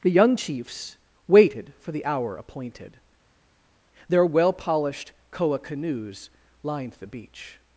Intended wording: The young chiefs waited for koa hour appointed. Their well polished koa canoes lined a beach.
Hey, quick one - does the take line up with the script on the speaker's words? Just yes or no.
no